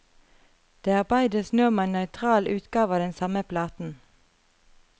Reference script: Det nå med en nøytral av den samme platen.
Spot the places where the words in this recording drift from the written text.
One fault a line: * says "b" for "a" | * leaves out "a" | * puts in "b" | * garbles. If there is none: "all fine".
* puts in "arbeides"
* puts in "utgave"